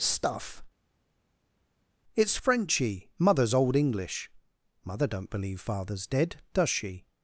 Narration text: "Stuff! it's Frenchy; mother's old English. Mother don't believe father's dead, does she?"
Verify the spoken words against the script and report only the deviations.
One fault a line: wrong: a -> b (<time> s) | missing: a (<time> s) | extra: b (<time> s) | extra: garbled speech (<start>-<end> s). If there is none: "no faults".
no faults